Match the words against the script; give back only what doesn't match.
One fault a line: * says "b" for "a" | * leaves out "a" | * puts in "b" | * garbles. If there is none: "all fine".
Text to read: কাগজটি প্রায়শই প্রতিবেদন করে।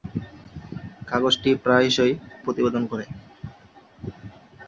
all fine